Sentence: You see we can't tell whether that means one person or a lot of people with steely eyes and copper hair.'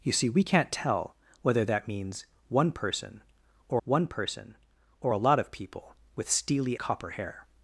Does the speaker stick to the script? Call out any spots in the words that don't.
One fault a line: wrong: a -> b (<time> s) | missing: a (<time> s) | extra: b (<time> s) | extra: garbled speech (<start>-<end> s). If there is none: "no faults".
extra: one person or (3.8 s)
missing: eyes and (6.8 s)